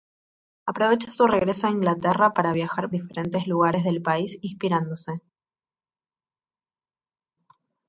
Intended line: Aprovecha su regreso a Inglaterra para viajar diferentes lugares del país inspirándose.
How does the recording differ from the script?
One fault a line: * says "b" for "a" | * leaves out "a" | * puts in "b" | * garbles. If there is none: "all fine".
all fine